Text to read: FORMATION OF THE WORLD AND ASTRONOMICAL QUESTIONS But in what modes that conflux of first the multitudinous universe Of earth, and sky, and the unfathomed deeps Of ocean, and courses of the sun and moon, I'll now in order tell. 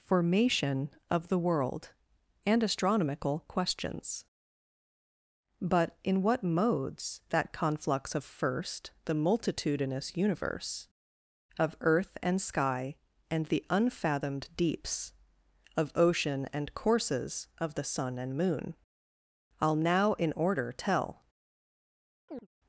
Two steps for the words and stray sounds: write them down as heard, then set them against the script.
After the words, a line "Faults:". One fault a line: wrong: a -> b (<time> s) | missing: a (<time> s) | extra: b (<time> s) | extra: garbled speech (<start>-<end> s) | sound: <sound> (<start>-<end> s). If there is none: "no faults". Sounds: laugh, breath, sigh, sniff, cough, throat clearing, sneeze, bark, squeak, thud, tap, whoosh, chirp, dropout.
FORMATION OF THE WORLD AND ASTRONOMICAL QUESTIONS But in what modes that conflux of first the multitudinous universe Of earth, and sky, and the unfathomed deeps Of ocean, and courses of the sun and moon, I'll now in order tell.
Faults:
sound: chirp (22.3-22.5 s)